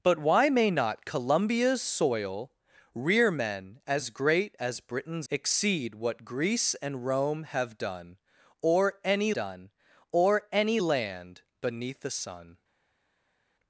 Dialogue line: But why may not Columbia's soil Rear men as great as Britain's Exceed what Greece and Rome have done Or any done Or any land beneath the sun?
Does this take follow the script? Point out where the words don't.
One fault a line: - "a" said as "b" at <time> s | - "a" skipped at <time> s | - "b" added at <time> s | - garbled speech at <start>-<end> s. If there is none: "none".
none